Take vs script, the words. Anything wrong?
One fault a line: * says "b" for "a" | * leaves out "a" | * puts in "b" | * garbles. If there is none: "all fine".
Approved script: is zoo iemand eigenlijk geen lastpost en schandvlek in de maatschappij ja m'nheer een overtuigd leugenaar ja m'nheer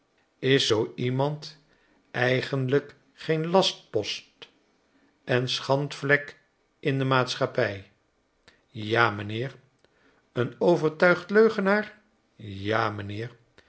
all fine